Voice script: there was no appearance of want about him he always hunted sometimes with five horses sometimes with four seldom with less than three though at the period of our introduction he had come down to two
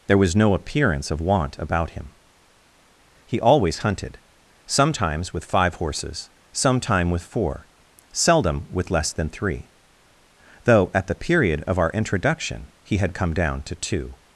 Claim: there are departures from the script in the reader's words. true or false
true